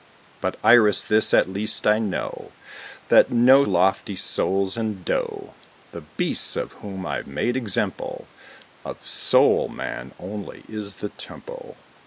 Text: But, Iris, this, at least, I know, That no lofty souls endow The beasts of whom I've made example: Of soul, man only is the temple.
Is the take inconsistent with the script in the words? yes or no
no